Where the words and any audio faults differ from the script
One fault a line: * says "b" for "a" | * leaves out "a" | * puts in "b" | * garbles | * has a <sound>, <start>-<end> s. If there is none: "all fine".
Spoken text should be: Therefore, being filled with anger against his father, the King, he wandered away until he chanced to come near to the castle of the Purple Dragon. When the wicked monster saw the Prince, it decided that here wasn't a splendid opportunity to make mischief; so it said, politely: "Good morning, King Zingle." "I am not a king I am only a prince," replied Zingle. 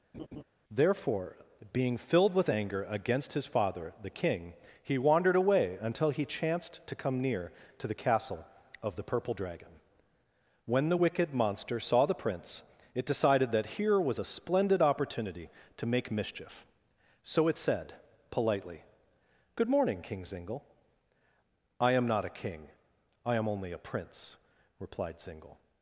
* has a laugh, 0.1-0.4 s
* says "was" for "wasn't"